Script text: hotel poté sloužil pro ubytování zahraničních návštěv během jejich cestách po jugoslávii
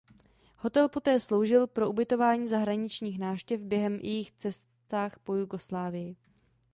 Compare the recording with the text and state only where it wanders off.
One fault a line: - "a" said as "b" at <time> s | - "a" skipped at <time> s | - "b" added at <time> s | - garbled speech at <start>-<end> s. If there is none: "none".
none